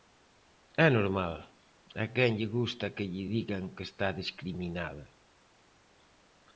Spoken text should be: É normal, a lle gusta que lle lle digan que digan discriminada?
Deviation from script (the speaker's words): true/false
true